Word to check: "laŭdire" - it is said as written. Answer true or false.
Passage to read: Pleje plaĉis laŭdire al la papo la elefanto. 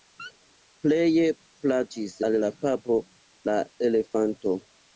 false